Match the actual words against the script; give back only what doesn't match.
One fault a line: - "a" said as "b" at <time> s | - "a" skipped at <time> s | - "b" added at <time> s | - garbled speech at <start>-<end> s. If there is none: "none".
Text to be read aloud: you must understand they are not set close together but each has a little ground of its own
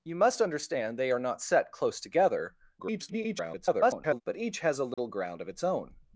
- garbled speech at 2.8-4.2 s